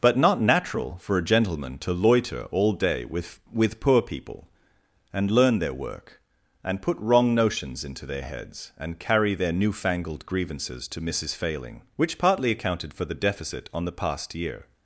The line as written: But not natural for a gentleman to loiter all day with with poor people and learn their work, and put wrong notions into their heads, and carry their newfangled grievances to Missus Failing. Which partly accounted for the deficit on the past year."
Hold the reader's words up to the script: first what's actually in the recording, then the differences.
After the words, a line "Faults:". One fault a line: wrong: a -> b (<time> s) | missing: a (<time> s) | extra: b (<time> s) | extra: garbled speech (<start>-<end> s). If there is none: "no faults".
But not natural for a gentleman to loiter all day with with poor people and learn their work, and put wrong notions into their heads, and carry their newfangled grievances to Missus Failing. Which partly accounted for the deficit on the past year."
Faults:
no faults